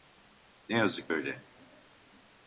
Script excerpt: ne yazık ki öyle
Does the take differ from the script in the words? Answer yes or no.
yes